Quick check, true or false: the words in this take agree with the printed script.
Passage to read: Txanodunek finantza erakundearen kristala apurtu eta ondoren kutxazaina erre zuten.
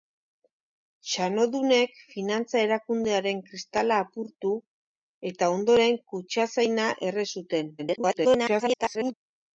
false